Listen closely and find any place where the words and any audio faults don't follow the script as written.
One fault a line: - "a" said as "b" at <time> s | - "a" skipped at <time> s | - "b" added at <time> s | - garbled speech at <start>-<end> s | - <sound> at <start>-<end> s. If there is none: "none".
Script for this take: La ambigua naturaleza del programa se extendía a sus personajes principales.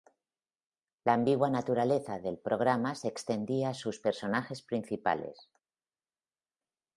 none